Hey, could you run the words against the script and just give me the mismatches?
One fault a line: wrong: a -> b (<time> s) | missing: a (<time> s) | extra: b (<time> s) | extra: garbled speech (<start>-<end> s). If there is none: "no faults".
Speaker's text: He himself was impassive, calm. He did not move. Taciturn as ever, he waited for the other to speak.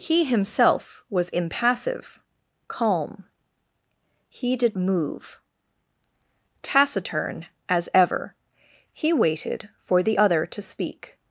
missing: not (4.8 s)